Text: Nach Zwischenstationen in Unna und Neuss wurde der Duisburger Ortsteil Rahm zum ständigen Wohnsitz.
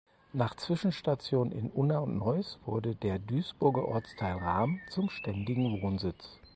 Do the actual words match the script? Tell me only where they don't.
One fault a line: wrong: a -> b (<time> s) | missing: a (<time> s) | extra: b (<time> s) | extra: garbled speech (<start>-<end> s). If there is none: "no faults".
no faults